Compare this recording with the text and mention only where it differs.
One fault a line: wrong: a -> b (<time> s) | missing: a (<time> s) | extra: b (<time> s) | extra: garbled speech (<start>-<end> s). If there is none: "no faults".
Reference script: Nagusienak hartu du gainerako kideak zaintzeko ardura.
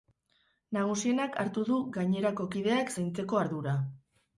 no faults